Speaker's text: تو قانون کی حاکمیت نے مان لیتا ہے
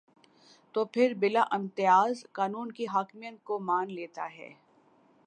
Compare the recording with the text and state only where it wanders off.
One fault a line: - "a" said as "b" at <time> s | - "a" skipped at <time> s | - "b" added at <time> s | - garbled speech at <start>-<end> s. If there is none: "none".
- "پھر بلا امتیاز" added at 0.8 s
- "نے" said as "کو" at 3.4 s